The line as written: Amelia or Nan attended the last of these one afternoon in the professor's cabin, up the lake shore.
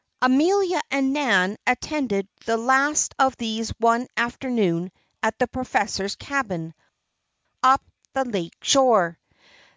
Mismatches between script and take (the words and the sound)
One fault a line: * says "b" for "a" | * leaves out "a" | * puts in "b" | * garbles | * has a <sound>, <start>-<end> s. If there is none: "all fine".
* says "and" for "or"
* says "at" for "in"